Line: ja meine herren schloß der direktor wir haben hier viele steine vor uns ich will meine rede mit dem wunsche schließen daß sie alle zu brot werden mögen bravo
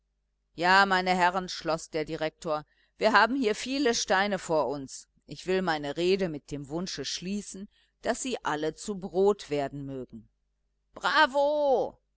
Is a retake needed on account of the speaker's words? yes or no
no